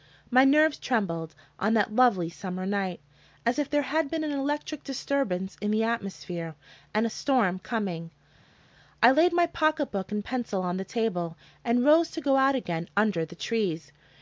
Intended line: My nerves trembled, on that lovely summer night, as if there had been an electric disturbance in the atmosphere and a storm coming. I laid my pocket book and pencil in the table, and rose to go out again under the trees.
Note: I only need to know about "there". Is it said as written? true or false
true